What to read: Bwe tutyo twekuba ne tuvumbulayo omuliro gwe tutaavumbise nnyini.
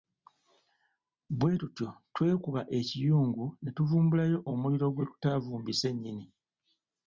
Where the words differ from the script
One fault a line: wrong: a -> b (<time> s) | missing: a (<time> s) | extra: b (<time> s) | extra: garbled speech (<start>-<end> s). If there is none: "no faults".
extra: ekiyungu (2.8 s)